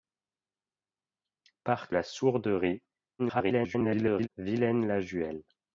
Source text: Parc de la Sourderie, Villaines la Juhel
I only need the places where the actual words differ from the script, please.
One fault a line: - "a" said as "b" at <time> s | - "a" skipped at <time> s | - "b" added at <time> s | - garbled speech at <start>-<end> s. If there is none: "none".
- "de" skipped at 1.9 s
- garbled speech at 3.2-4.3 s